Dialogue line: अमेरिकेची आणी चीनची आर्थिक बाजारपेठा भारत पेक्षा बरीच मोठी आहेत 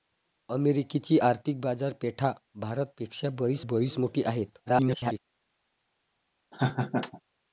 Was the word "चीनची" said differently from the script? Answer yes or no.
yes